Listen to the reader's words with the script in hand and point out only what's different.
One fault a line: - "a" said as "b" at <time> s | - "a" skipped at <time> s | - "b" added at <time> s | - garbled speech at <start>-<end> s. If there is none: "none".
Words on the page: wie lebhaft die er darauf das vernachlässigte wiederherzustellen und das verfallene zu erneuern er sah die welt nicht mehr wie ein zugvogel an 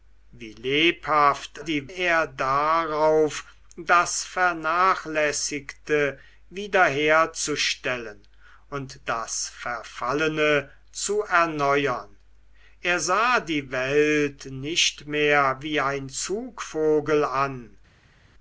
none